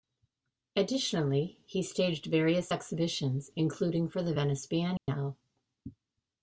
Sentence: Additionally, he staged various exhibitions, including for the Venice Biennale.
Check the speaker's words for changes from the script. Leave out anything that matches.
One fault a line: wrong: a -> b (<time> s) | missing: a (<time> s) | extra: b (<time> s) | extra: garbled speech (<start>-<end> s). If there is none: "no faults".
no faults